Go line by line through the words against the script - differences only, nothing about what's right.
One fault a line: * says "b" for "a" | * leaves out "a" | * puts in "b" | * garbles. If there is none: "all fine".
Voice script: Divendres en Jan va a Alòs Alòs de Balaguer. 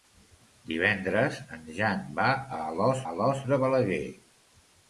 all fine